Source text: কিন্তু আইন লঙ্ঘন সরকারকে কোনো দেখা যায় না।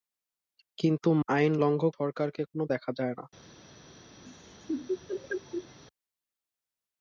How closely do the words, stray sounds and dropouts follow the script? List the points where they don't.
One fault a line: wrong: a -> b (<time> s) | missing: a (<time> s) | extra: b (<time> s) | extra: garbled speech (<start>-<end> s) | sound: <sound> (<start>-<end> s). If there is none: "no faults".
sound: laugh (4.2-5.8 s)